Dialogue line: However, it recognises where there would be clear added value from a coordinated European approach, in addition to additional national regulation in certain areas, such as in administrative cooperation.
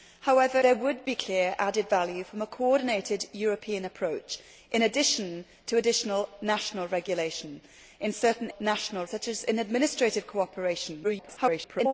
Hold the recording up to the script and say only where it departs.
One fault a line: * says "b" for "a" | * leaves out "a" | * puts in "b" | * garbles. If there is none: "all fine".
* leaves out "it recognises where"
* says "national" for "areas"
* garbles